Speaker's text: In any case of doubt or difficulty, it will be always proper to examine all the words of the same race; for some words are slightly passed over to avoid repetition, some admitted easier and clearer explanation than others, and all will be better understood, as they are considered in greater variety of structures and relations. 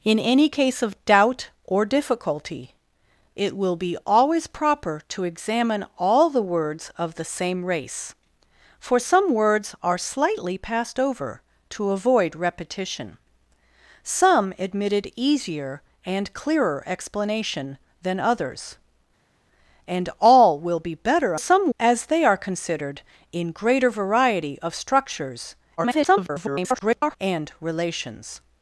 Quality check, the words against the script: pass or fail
fail